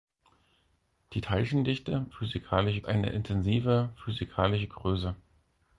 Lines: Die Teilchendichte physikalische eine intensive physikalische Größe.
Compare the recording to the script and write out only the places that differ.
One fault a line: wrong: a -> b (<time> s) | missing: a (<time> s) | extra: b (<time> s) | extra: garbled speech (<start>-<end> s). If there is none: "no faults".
no faults